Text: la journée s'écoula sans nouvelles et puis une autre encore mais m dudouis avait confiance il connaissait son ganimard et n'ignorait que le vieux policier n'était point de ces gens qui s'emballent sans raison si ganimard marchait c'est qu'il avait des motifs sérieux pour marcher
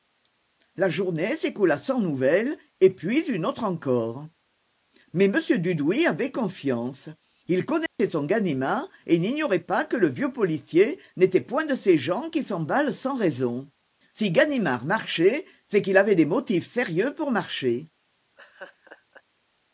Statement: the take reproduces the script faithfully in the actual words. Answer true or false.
false